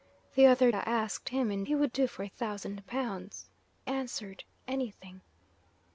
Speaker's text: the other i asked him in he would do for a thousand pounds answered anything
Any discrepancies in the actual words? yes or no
no